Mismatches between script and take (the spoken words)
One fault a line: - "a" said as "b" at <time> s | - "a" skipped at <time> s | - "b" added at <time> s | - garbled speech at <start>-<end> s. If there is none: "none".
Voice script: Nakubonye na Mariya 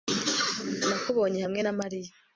- "hamwe" added at 1.4 s